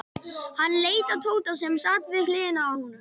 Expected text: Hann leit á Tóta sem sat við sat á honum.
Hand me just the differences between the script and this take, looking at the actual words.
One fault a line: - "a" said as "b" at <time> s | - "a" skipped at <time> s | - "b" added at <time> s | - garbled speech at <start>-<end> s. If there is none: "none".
- "sat" said as "hliðina" at 2.3 s